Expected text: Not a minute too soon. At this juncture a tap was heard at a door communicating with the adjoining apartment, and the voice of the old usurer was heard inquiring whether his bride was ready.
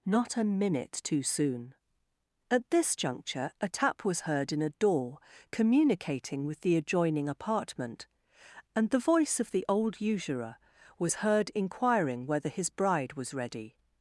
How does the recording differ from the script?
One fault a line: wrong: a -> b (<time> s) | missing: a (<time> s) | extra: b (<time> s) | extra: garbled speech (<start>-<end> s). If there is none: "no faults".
wrong: at -> in (4.5 s)